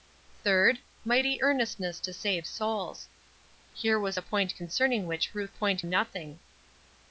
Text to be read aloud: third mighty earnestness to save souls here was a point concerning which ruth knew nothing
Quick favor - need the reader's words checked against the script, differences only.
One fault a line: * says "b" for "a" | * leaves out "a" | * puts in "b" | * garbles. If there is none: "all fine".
* says "point" for "knew"